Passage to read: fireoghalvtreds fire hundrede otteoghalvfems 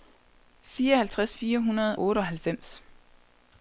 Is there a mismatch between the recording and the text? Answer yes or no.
no